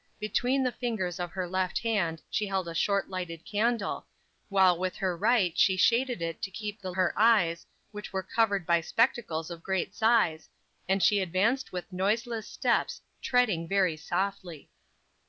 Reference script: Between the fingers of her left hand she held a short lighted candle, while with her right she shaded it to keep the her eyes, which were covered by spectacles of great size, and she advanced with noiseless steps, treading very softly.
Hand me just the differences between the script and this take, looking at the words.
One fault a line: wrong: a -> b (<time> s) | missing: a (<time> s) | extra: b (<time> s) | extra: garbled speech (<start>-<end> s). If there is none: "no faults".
no faults